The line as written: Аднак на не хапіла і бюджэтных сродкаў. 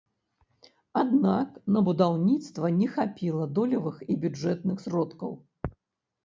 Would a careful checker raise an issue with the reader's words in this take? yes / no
yes